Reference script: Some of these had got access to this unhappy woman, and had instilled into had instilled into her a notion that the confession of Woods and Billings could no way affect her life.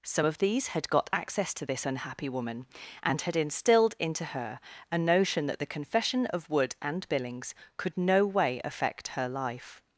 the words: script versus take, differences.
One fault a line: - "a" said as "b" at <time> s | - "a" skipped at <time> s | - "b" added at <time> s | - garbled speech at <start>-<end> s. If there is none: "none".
- "had instilled into" skipped at 4.3 s
- "Woods" said as "Wood" at 6.5 s